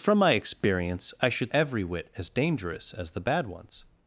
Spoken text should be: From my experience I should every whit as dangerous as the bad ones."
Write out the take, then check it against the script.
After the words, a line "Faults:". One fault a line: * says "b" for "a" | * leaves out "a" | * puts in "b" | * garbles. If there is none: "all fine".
From my experience I should every whit as dangerous as the bad ones."
Faults:
all fine